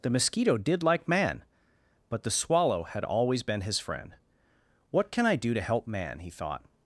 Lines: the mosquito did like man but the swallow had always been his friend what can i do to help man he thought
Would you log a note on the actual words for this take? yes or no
no